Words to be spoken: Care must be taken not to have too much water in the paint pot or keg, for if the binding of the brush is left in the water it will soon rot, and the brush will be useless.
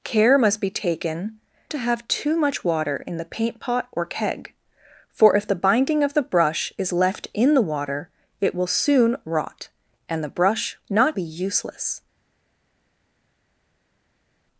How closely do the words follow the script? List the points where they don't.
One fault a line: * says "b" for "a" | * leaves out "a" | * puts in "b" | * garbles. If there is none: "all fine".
* leaves out "not"
* says "not" for "will"